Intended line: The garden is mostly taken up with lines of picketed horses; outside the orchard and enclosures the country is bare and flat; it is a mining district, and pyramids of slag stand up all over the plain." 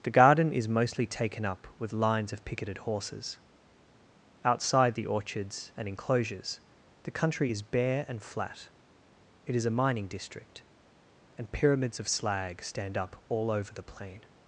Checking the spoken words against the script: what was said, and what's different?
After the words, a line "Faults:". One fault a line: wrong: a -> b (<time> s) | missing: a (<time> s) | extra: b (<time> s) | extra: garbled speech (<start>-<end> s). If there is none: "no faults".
The garden is mostly taken up with lines of picketed horses; outside the orchards and enclosures the country is bare and flat; it is a mining district, and pyramids of slag stand up all over the plain."
Faults:
wrong: orchard -> orchards (5.1 s)